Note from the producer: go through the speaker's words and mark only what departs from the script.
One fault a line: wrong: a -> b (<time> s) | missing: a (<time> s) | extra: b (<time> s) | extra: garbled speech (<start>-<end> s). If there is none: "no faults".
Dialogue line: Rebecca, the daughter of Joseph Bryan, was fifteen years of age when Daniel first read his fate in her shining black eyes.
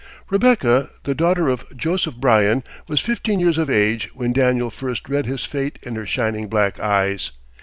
no faults